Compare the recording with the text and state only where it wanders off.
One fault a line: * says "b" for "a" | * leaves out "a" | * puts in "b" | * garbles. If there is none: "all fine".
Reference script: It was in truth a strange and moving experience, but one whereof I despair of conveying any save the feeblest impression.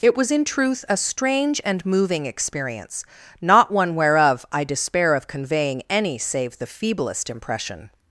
* says "not" for "but"